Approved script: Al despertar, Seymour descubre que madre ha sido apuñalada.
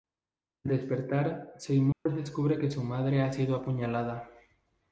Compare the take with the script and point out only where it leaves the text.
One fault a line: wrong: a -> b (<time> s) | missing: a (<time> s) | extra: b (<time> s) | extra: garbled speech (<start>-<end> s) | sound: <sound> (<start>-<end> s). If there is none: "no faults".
sound: dropout (1.9-2.1 s)
extra: su (2.7 s)